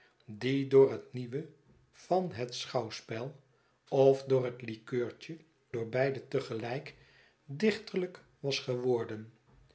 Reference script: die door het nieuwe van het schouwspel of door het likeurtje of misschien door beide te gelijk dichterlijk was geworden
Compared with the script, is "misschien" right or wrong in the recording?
wrong